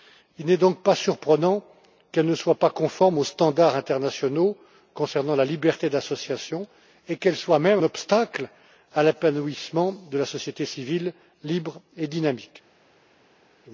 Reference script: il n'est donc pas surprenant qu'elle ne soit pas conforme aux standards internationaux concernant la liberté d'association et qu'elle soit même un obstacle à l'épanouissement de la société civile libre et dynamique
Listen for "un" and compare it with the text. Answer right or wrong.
wrong